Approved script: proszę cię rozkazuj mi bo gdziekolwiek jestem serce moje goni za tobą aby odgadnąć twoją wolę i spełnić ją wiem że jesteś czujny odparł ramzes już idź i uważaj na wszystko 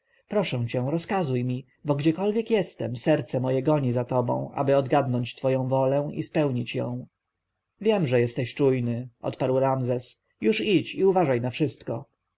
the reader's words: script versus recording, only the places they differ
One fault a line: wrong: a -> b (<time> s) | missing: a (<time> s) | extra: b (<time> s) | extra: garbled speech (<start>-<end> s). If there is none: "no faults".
no faults